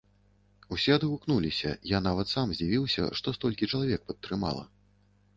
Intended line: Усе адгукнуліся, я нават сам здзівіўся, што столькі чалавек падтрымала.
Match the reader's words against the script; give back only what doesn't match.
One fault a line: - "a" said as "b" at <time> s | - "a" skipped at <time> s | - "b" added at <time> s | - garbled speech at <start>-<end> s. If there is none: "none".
none